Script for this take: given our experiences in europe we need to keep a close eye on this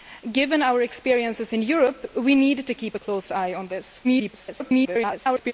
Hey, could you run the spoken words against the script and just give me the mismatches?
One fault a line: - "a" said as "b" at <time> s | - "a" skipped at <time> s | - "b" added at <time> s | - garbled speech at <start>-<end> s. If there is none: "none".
- garbled speech at 4.0-5.5 s